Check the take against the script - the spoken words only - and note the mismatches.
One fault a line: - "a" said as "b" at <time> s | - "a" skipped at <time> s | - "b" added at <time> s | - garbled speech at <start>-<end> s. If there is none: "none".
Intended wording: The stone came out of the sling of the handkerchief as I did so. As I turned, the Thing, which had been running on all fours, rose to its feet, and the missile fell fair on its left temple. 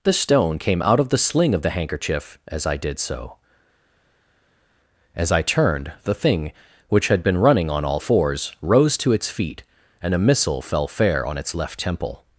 - "the" said as "a" at 10.1 s